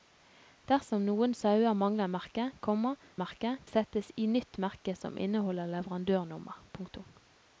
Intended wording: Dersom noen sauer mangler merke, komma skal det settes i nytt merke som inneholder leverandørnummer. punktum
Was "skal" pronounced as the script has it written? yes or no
no